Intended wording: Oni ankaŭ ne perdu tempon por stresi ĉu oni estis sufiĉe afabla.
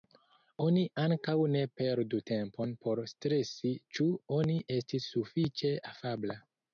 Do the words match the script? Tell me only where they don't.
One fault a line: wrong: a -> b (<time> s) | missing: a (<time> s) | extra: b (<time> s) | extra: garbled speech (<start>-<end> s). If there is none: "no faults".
no faults